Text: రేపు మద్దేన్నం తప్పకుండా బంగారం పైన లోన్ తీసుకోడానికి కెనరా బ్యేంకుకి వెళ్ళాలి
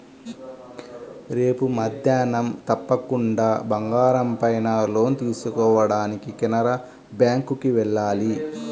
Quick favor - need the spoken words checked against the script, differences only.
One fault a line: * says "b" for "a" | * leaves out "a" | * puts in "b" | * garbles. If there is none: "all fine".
all fine